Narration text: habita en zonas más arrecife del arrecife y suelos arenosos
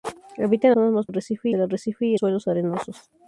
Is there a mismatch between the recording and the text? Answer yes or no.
no